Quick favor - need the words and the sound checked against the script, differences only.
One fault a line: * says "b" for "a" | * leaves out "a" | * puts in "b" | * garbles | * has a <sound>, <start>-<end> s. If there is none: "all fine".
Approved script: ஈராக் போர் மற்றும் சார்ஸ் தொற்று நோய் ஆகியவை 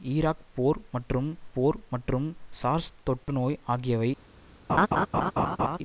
* puts in "போர் மற்றும்"
* has a dropout, 3.2-3.3 s
* has a laugh, 4.7-5.8 s